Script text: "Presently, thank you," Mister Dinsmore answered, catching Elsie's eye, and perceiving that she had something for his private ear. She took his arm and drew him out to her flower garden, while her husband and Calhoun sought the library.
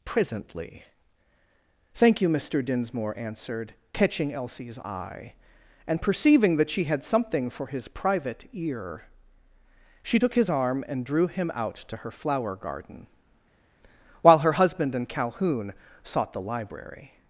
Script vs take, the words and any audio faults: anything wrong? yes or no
no